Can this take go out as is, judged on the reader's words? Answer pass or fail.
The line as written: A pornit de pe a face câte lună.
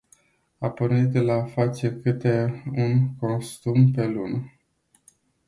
fail